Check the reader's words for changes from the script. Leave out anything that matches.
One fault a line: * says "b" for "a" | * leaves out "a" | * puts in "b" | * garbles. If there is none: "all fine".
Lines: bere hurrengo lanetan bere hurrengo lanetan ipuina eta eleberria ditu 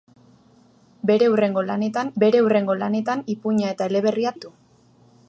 all fine